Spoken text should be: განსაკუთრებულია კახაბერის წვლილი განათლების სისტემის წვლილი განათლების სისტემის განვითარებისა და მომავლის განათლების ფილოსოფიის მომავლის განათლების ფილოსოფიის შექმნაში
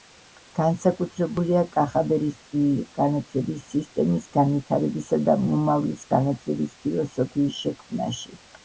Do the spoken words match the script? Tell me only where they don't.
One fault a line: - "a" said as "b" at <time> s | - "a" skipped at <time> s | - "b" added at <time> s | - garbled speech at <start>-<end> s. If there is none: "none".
- "წვლილი განათლების სისტემის" skipped at 4.3 s
- "მომავლის განათლების ფილოსოფიის" skipped at 7.6 s